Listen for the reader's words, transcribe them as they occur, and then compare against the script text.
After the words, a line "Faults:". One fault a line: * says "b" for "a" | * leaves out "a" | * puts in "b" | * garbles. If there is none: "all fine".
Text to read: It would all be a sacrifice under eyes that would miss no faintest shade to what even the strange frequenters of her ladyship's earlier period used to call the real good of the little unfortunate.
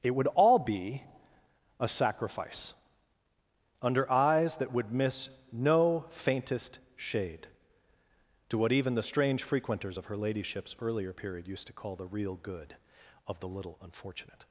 It would all be a sacrifice under eyes that would miss no faintest shade to what even the strange frequenters of her ladyship's earlier period used to call the real good of the little unfortunate.
Faults:
all fine